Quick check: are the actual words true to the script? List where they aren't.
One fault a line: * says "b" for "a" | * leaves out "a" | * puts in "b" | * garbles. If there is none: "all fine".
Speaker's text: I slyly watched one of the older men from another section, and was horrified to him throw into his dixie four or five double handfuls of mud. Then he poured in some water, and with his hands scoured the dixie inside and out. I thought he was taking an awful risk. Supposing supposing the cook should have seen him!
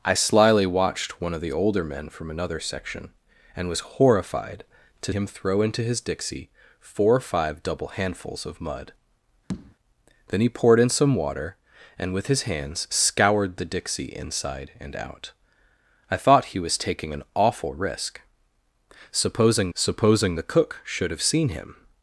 all fine